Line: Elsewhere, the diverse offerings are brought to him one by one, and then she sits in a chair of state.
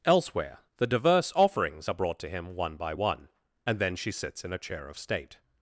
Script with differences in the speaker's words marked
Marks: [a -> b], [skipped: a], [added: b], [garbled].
Elsewhere, the diverse offerings are brought to him one by one, and then she sits in a chair of state.